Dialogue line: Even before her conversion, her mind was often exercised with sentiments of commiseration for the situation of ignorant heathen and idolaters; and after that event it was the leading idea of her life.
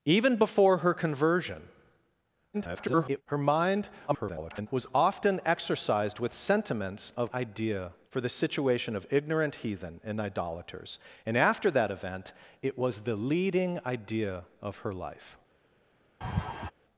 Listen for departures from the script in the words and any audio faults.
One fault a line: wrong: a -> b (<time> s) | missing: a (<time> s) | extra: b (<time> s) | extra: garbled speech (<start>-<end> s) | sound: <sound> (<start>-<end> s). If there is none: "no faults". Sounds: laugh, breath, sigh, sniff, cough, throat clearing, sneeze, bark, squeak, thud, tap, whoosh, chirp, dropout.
extra: garbled speech (2.5-3.2 s)
extra: garbled speech (4.1-4.7 s)
wrong: commiseration -> idea (7.3 s)
sound: laugh (16.2-16.7 s)